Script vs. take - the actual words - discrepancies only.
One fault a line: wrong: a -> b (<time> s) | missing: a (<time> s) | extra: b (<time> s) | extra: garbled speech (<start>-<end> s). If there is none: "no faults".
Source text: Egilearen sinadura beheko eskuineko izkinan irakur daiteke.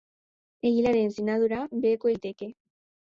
missing: eskuineko izkinan irakur (2.1 s)